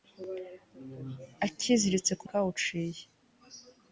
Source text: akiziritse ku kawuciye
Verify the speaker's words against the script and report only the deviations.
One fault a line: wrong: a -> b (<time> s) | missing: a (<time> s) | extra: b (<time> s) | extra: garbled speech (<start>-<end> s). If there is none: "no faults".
no faults